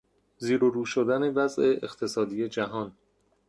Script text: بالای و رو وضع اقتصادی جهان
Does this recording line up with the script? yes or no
no